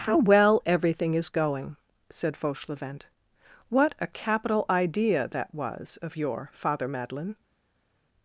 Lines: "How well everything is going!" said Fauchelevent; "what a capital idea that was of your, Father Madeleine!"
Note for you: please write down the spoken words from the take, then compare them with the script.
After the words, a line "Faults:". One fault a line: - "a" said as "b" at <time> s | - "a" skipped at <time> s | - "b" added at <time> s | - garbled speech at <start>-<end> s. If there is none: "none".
"How well everything is going!" said Fauchelevent; "what a capital idea that was of your, Father Madeleine!"
Faults:
none